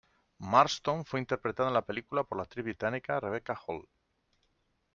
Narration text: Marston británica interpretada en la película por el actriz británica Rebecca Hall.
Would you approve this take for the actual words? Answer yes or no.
no